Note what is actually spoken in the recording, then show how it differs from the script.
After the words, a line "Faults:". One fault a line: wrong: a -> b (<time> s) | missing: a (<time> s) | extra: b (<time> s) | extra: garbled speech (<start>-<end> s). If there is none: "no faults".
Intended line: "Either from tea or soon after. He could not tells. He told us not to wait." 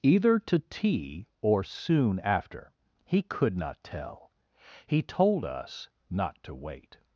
"Either to tea or soon after. He could not tell. He told us not to wait."
Faults:
wrong: from -> to (0.4 s)
wrong: tells -> tell (3.8 s)